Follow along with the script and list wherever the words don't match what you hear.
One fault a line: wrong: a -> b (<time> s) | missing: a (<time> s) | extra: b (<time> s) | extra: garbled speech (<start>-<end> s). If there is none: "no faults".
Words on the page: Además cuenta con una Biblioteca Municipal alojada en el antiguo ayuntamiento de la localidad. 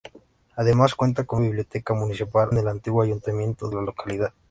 missing: una (1.4 s)
missing: alojada (2.5 s)
missing: de (3.7 s)